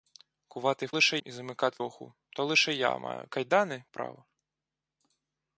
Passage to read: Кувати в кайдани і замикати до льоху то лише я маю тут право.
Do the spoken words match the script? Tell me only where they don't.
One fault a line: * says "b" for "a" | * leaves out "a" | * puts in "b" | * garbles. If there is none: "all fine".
* says "лише" for "кайдани"
* leaves out "до"
* says "кайдани" for "тут"